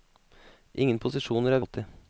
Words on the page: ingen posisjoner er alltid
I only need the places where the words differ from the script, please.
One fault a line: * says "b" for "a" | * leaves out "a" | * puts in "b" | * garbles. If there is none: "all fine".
all fine